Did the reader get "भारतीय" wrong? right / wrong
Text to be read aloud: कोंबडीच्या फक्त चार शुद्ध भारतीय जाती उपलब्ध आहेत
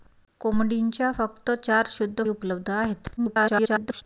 wrong